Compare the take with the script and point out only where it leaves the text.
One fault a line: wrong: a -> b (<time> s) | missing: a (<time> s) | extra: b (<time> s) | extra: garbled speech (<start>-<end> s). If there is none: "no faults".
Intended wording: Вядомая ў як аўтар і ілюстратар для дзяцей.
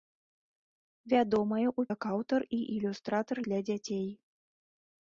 no faults